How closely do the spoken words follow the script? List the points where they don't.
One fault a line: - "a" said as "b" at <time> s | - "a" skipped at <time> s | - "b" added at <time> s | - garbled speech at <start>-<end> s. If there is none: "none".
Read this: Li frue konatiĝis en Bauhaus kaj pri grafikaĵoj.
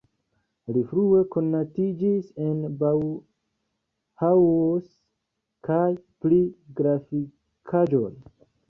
none